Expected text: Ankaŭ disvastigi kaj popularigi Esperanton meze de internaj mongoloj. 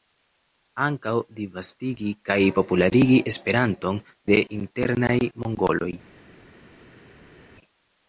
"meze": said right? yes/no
no